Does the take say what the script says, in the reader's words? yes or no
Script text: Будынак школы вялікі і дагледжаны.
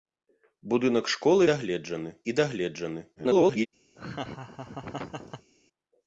no